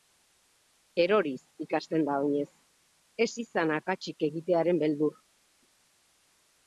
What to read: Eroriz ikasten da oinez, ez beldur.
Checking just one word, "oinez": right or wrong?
right